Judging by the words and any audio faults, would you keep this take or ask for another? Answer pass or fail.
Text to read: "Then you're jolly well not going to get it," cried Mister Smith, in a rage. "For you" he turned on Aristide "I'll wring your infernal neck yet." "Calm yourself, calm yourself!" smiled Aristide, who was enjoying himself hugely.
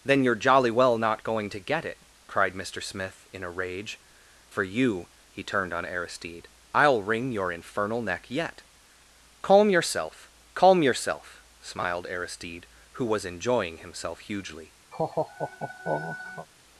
fail